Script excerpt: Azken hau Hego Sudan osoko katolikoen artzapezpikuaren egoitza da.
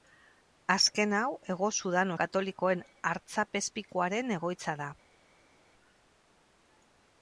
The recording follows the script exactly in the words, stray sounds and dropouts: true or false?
false